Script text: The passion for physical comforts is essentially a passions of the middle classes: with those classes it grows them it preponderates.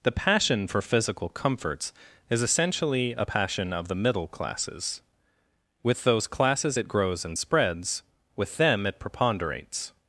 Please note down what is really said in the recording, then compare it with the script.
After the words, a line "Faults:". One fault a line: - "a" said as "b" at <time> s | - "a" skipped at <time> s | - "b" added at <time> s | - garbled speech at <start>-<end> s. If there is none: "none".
The passion for physical comforts is essentially a passion of the middle classes: with those classes it grows and spreads, with them it preponderates.
Faults:
- "passions" said as "passion" at 3.2 s
- "and spreads with" added at 7.3 s